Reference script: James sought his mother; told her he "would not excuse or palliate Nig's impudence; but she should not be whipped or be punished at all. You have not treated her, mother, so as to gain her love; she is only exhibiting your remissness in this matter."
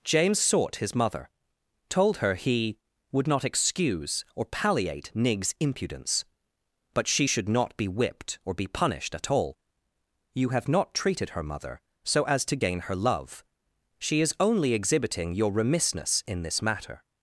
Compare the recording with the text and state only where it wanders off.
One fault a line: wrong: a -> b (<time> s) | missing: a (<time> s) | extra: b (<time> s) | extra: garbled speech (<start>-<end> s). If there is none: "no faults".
no faults